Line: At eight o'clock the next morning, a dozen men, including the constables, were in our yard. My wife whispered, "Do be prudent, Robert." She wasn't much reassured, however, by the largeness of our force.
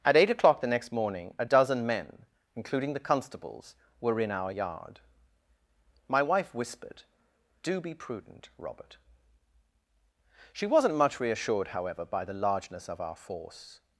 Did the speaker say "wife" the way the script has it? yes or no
yes